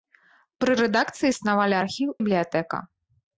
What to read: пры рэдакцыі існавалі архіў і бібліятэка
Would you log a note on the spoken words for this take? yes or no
yes